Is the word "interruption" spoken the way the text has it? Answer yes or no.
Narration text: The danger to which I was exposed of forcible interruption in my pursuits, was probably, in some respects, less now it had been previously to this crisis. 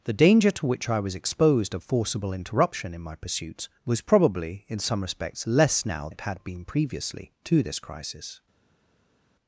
yes